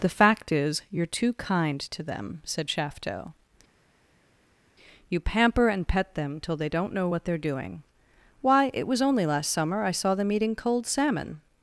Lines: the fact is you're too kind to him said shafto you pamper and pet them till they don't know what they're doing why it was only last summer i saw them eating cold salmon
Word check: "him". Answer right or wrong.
wrong